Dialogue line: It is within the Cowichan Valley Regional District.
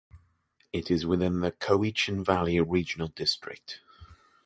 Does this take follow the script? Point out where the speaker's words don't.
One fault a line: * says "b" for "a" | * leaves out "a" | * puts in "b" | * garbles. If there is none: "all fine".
all fine